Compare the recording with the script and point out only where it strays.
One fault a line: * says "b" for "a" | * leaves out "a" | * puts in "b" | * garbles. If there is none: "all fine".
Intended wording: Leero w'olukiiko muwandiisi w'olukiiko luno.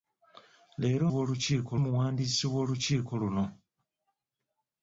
all fine